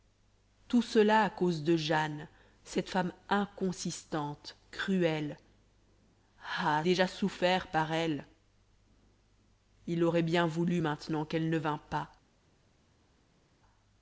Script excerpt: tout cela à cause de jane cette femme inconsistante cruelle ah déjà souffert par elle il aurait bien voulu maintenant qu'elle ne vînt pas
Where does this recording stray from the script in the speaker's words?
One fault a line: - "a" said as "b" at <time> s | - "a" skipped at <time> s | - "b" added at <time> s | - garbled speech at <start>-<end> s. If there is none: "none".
none